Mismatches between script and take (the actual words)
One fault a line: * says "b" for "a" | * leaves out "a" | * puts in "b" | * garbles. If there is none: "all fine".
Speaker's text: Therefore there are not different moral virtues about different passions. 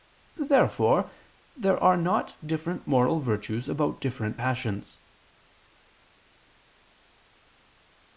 all fine